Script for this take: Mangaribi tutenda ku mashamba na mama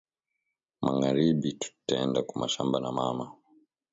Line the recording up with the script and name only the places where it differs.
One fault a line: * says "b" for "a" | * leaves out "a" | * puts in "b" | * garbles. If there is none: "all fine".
all fine